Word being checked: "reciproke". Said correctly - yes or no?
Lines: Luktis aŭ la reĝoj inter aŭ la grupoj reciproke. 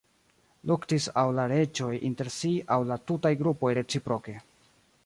yes